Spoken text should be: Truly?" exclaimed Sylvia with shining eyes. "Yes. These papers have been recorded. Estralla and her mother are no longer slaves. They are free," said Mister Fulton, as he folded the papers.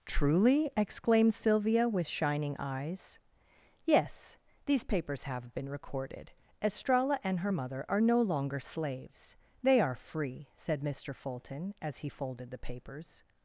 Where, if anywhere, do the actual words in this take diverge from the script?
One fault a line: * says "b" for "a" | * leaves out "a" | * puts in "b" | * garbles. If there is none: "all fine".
all fine